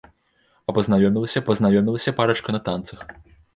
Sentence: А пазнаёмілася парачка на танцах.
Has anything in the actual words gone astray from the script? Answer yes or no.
yes